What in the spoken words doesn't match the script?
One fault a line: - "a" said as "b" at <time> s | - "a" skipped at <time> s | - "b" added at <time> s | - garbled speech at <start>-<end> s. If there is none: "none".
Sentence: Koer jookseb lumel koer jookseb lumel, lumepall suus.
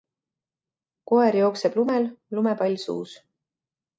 - "koer jookseb lumel" skipped at 2.1 s